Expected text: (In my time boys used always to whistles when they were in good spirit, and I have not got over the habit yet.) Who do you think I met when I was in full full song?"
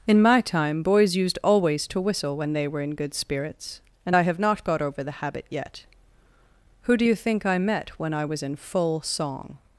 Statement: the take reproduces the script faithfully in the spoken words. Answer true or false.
false